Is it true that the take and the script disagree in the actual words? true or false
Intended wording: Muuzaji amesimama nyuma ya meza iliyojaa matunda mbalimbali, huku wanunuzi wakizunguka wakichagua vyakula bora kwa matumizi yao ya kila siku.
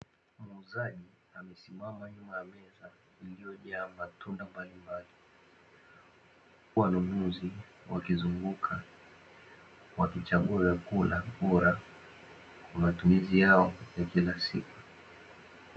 true